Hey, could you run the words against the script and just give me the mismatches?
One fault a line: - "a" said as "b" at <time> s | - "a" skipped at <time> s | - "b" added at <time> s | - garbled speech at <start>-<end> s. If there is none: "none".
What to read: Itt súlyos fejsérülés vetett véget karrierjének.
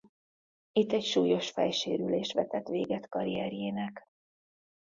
- "egy" added at 0.9 s